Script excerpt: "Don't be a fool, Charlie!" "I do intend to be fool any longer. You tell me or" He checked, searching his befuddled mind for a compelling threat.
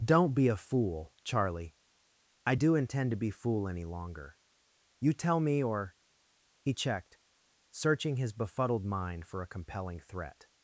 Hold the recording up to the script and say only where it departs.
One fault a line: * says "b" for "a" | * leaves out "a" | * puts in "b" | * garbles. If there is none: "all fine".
all fine